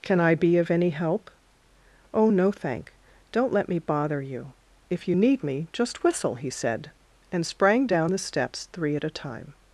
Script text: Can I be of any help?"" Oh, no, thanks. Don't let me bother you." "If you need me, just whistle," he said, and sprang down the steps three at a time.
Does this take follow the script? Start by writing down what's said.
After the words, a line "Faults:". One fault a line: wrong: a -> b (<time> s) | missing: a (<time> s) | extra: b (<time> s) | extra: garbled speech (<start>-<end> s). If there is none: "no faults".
Can I be of any help?"" Oh, no, thank. Don't let me bother you." "If you need me, just whistle," he said, and sprang down the steps three at a time.
Faults:
wrong: thanks -> thank (2.5 s)